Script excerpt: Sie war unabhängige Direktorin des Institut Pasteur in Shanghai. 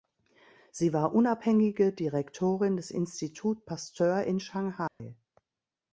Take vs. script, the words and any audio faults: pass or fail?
fail